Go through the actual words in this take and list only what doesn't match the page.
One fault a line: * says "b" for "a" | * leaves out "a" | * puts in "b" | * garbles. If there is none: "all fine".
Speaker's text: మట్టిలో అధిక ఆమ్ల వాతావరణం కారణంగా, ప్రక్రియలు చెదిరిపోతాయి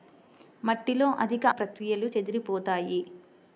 * leaves out "ఆమ్ల వాతావరణం కారణంగా"